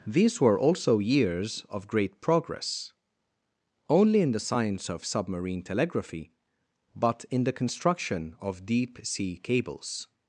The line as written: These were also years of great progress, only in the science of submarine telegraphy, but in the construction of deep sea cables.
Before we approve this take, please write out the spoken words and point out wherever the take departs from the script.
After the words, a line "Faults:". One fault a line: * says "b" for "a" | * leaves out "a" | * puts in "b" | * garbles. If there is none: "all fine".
These were also years of great progress, only in the science of submarine telegraphy, but in the construction of deep sea cables.
Faults:
all fine